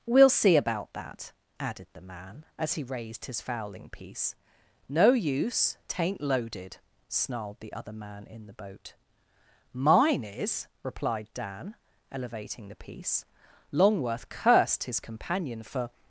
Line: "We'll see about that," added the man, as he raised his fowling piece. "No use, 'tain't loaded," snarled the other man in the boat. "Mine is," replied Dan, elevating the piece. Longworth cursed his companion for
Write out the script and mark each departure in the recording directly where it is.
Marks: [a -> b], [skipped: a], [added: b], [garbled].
"We'll see about that," added the man, as he raised his fowling piece. "No use, 'tain't loaded," snarled the other man in the boat. "Mine is," replied Dan, elevating the piece. Longworth cursed his companion for